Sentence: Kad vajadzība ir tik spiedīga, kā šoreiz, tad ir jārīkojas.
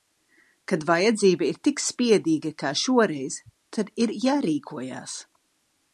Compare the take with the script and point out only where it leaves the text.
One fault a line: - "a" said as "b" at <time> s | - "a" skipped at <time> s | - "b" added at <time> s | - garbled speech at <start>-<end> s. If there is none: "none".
none